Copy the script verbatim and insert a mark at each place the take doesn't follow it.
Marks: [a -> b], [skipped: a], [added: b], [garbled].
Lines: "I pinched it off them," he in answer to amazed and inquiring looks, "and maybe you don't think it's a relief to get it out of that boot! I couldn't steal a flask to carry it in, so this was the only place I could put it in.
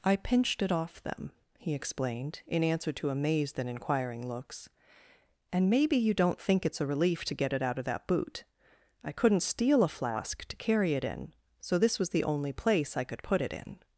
"I pinched it off them," he [added: explained] in answer to amazed and inquiring looks, "and maybe you don't think it's a relief to get it out of that boot! I couldn't steal a flask to carry it in, so this was the only place I could put it in.